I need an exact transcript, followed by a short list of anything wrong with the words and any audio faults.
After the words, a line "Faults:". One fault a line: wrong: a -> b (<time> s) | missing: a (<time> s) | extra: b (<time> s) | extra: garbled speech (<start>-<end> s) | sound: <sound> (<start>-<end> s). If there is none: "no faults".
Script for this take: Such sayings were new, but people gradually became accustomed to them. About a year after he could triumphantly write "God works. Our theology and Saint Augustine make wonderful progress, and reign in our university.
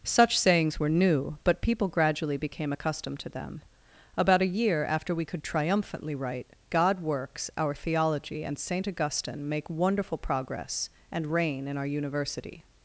Such sayings were new, but people gradually became accustomed to them. About a year after we could triumphantly write "God works. Our theology and Saint Augustine make wonderful progress, and reign in our university.
Faults:
wrong: he -> we (5.2 s)